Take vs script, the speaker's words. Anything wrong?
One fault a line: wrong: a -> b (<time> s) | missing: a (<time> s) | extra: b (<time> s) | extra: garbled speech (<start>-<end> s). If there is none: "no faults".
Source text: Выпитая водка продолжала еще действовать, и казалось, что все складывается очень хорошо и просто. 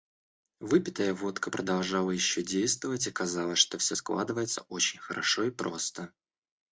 no faults